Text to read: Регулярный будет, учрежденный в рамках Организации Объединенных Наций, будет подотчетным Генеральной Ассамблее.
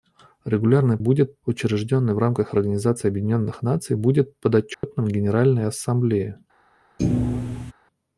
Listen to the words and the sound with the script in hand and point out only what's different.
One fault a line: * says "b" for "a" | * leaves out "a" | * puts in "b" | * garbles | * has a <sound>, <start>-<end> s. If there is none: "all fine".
* has a dropout, 4.7-4.8 s
* has a thud, 7.0-7.7 s